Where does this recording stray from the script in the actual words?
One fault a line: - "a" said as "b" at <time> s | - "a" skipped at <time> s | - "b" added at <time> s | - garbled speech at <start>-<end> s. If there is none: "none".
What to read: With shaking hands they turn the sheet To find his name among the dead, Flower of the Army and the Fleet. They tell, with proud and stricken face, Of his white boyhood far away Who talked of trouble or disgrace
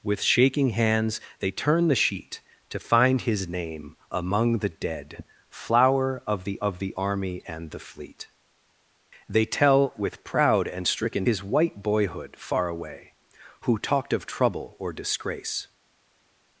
- "of the" added at 6.6 s
- "face Of" skipped at 11.2 s